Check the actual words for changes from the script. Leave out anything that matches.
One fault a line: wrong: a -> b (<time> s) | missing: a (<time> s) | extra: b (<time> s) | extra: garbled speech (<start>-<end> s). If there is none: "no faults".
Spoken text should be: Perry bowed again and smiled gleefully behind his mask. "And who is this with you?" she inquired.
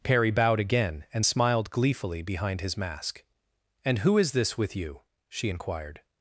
no faults